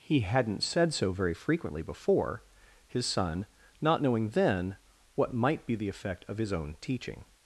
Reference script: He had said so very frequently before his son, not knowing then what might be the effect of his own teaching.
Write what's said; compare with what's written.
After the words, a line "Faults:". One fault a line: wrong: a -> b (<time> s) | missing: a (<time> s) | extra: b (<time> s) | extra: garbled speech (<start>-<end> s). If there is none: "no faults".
He hadn't said so very frequently before his son, not knowing then what might be the effect of his own teaching.
Faults:
wrong: had -> hadn't (0.2 s)